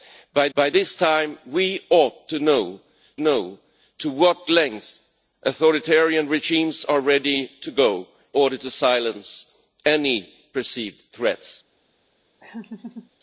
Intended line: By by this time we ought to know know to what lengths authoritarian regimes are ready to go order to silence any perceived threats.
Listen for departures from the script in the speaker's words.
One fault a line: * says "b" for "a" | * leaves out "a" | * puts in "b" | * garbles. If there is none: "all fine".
all fine